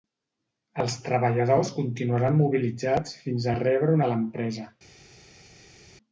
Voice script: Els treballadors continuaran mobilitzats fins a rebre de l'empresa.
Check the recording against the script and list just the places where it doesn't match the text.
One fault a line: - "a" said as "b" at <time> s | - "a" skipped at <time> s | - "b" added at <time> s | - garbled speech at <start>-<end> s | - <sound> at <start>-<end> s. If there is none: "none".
none